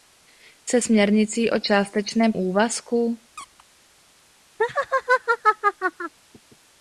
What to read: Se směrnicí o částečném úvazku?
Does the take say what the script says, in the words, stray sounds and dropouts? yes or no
no